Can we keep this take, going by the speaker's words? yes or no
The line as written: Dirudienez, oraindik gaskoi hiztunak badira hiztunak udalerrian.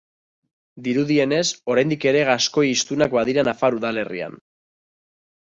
no